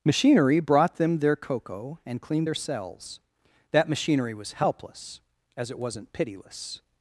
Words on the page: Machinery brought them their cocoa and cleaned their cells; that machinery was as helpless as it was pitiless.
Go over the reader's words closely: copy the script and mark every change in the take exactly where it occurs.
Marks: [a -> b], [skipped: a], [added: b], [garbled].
Machinery brought them their cocoa and cleaned their cells; that machinery was [skipped: as] helpless as it [was -> wasn't] pitiless.